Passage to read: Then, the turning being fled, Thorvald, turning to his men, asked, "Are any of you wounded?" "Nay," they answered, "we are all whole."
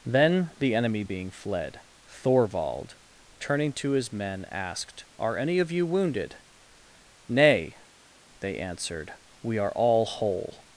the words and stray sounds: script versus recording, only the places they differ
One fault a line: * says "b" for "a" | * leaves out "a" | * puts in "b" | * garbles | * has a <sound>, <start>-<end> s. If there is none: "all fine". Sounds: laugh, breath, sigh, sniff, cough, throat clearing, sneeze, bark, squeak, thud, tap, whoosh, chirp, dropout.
* says "enemy" for "turning"